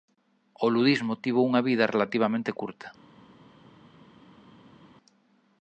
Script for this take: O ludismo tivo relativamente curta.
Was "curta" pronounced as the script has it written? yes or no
yes